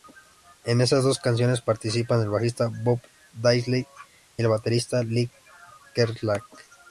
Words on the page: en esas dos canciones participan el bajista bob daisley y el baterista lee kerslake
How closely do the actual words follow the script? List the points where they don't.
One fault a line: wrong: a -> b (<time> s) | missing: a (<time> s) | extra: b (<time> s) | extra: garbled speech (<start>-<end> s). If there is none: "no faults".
no faults